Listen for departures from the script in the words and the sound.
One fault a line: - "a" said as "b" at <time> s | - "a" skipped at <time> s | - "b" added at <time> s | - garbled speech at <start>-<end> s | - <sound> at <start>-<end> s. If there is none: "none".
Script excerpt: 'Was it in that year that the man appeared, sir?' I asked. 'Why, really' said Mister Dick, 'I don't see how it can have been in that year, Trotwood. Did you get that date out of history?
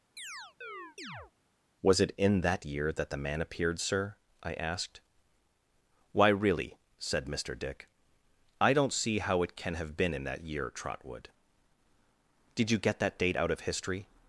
- chirp at 0.2-1.3 s